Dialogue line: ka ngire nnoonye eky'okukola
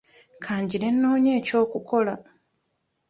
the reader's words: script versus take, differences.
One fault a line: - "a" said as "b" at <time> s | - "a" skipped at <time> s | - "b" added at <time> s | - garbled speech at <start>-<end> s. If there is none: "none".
none